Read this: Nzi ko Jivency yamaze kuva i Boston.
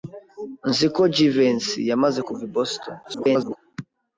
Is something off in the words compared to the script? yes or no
yes